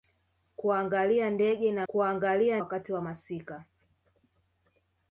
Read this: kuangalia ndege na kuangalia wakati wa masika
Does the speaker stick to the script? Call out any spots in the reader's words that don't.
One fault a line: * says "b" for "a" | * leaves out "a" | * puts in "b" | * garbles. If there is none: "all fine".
all fine